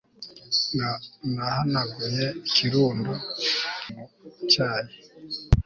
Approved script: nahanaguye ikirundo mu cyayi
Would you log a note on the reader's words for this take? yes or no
no